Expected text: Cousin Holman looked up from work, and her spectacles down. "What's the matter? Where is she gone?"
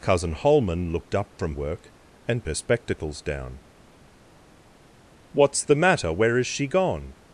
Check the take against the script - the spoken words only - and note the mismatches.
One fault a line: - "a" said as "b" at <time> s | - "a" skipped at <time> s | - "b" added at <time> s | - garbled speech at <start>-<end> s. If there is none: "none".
none